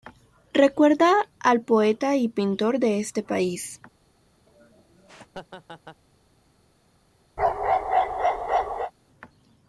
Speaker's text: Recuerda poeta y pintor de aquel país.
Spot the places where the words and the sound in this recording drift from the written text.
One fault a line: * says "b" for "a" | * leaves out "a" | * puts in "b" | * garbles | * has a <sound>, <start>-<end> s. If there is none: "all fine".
* puts in "al"
* says "este" for "aquel"
* has a laugh, 4.5-6.0 s
* has a bark, 7.4-8.9 s